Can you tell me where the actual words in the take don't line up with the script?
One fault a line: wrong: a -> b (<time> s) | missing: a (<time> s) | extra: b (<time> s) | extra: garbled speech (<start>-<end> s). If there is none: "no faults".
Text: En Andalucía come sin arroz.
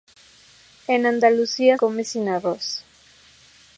no faults